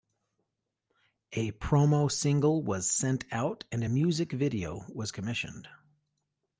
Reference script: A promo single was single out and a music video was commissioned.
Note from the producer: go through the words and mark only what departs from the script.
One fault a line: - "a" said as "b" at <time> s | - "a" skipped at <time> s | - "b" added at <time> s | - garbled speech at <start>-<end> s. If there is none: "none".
- "single" said as "sent" at 2.9 s